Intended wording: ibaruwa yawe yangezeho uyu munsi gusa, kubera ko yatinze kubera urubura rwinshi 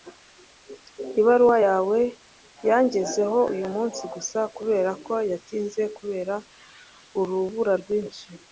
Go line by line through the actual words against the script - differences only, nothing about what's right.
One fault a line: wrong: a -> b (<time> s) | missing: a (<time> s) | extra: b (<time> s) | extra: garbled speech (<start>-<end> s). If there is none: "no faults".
no faults